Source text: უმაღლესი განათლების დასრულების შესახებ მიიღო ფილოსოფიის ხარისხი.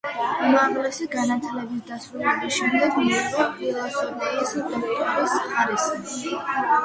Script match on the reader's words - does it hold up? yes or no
no